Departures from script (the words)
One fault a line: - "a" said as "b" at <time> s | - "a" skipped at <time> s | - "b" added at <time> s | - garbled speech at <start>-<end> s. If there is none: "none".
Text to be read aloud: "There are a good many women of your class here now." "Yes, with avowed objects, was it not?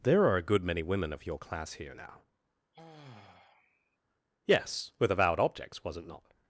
none